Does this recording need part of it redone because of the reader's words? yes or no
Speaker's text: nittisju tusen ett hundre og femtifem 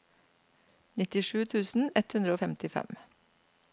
no